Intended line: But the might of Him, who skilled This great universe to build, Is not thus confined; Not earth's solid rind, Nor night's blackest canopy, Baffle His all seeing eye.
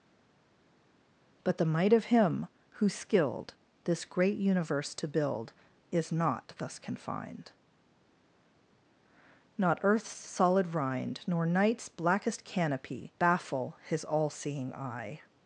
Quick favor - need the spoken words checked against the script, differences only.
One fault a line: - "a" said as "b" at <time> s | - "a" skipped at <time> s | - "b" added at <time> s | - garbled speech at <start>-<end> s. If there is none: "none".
none